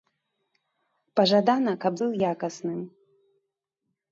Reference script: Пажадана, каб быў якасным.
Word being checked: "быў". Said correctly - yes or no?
yes